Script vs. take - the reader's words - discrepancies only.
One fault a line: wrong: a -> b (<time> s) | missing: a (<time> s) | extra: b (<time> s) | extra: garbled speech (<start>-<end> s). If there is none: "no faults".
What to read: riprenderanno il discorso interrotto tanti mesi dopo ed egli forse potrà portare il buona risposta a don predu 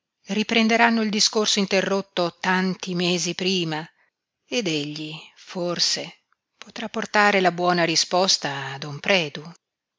wrong: dopo -> prima (3.3 s)
wrong: il -> la (7.4 s)